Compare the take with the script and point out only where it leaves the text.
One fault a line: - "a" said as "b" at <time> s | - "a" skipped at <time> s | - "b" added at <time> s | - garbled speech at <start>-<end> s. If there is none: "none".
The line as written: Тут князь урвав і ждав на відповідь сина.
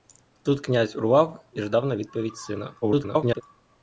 - garbled speech at 2.8-3.4 s